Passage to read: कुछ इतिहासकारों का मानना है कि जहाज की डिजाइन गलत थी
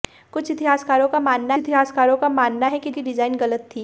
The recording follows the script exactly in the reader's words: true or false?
false